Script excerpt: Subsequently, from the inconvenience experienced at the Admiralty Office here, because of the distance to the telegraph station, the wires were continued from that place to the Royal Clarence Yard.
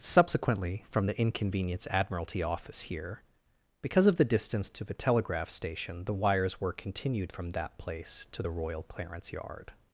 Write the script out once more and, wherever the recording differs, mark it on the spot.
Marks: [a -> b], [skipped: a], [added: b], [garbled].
Subsequently, from the inconvenience [skipped: experienced at the] Admiralty Office here, because of the distance to the telegraph station, the wires were continued from that place to the Royal Clarence Yard.